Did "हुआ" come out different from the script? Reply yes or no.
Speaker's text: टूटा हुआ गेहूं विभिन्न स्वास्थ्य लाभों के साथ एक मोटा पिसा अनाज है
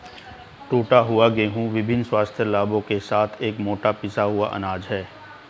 no